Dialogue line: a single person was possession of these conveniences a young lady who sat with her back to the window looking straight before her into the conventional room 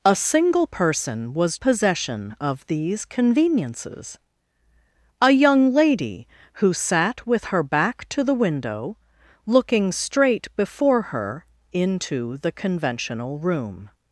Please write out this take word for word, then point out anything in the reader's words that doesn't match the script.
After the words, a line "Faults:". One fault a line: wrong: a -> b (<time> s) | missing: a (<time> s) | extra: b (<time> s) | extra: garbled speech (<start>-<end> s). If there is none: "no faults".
a single person was possession of these conveniences a young lady who sat with her back to the window looking straight before her into the conventional room
Faults:
no faults